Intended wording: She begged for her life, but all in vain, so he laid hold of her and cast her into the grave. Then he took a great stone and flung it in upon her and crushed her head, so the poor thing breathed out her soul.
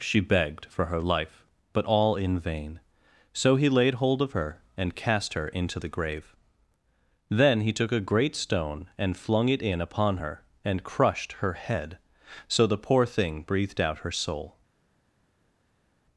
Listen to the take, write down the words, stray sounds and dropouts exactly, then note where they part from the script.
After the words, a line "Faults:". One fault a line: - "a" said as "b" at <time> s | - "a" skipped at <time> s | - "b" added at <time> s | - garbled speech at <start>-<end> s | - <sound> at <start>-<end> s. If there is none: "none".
She begged for her life, but all in vain, so he laid hold of her and cast her into the grave. Then he took a great stone and flung it in upon her and crushed her head, so the poor thing breathed out her soul.
Faults:
none